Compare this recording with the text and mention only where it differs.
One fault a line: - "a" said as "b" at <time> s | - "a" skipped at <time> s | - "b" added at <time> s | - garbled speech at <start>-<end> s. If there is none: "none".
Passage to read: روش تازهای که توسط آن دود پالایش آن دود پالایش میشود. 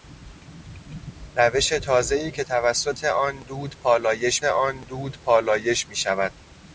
none